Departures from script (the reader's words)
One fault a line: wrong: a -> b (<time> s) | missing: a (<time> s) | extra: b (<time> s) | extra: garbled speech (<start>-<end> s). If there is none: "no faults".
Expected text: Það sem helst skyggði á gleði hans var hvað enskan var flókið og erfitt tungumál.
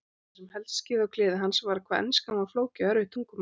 no faults